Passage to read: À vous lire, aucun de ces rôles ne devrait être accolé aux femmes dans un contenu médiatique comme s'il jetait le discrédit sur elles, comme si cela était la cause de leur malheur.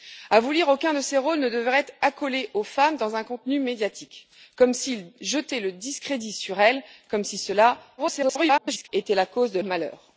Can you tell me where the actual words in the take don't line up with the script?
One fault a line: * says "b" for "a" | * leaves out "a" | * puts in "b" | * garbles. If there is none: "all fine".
* garbles
* leaves out "leur"